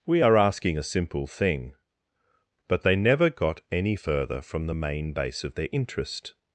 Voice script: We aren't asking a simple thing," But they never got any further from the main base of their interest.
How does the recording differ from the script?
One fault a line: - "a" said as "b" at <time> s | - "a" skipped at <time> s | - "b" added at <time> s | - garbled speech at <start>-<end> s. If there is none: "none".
- "aren't" said as "are" at 0.2 s